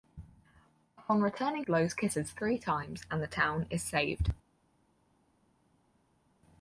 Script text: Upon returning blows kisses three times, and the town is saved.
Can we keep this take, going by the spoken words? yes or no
yes